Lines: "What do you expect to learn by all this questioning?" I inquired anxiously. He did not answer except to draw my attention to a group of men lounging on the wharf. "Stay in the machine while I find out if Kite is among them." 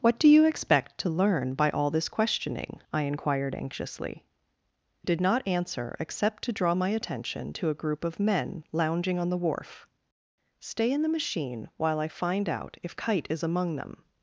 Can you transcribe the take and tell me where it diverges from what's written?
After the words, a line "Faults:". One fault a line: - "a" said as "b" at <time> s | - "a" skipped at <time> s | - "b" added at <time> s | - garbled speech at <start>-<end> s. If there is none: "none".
"What do you expect to learn by all this questioning?" I inquired anxiously. Did not answer except to draw my attention to a group of men lounging on the wharf. "Stay in the machine while I find out if Kite is among them."
Faults:
- "He" skipped at 4.2 s